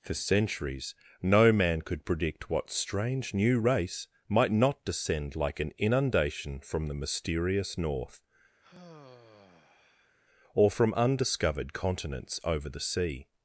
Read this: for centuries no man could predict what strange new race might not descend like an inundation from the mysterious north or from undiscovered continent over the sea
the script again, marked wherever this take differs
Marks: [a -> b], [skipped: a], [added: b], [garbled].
for centuries no man could predict what strange new race might not descend like an inundation from the mysterious north or from undiscovered [continent -> continents] over the sea